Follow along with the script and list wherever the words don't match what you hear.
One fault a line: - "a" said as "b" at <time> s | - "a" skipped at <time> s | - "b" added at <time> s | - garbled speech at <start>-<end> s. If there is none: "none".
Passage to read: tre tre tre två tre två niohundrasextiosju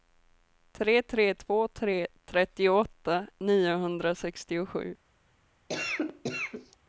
- "tre" skipped at 1.4 s
- "två" said as "trettioåtta" at 2.3 s